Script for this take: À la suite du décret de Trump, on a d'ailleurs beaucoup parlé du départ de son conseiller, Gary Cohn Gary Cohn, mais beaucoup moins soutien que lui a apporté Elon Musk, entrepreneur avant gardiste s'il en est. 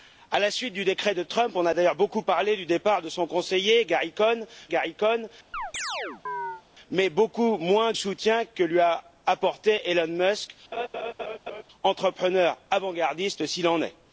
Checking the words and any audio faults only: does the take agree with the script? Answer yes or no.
no